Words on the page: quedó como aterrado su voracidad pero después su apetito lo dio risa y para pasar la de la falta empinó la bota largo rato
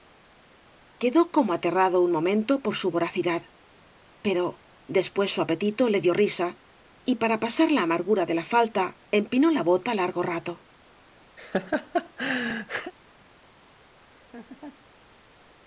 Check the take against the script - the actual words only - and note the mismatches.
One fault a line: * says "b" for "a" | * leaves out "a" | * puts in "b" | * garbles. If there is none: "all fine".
* puts in "un momento por"
* says "le" for "lo"
* puts in "amargura"